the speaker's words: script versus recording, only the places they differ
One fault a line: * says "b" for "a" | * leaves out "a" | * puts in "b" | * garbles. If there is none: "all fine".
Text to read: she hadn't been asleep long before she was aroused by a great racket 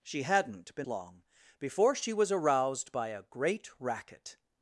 * leaves out "asleep"